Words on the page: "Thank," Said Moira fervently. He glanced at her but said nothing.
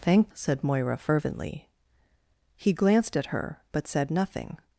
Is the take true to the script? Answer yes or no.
yes